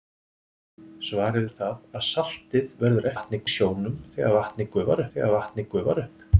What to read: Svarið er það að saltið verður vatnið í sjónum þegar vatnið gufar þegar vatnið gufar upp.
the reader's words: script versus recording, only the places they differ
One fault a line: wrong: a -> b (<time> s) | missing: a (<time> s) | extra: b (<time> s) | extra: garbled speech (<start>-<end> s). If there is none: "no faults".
no faults